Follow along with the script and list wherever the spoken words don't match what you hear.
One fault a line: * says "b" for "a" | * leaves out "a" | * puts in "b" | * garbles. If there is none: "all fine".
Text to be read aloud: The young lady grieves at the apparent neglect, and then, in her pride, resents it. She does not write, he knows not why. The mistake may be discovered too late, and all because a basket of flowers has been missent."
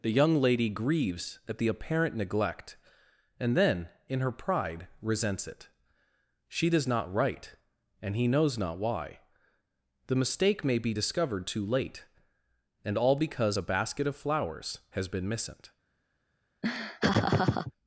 * puts in "and"